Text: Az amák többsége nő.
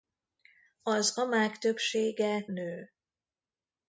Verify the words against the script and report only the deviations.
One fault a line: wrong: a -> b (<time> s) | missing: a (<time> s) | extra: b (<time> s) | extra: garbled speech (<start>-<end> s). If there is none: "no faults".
no faults